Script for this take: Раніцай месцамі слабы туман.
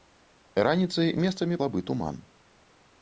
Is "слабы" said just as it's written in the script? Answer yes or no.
yes